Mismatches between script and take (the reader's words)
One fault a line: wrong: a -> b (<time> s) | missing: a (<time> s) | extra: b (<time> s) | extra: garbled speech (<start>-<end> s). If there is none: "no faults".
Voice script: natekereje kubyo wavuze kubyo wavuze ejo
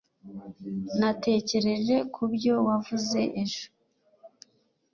missing: kubyo wavuze (3.2 s)